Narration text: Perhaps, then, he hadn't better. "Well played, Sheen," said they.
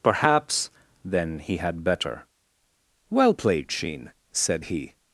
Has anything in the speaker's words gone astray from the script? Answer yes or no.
yes